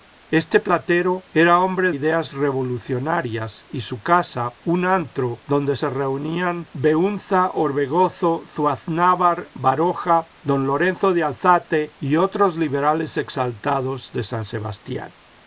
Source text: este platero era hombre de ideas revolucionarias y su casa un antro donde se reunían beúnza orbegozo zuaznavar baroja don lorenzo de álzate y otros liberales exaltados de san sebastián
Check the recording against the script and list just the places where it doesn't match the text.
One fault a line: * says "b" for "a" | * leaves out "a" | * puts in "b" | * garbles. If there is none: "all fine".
* leaves out "de"